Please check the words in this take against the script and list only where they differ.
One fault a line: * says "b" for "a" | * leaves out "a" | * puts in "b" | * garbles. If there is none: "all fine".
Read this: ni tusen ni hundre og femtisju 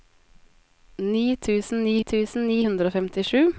* puts in "tusen ni"